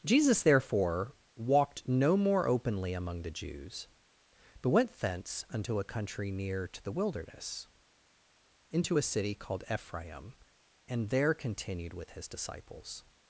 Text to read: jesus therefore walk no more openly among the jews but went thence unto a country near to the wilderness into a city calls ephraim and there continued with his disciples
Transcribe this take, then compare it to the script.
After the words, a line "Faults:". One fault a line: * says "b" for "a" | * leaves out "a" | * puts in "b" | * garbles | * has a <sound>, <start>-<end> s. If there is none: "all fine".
jesus therefore walked no more openly among the jews but went thence unto a country near to the wilderness into a city called ephraim and there continued with his disciples
Faults:
* says "walked" for "walk"
* says "called" for "calls"